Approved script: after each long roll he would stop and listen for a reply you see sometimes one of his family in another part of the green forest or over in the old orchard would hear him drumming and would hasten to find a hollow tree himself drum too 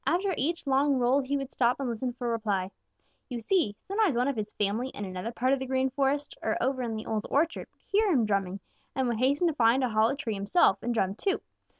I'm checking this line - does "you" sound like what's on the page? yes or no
yes